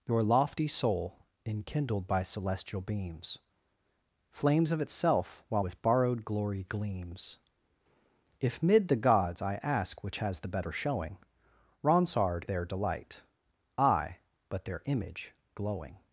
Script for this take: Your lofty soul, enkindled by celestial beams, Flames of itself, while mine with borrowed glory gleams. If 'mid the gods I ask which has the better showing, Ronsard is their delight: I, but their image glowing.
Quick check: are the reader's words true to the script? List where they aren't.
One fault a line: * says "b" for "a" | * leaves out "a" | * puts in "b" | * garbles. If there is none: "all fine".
* leaves out "mine"
* leaves out "is"